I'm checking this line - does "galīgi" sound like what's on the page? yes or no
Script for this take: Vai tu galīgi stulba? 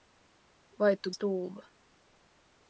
no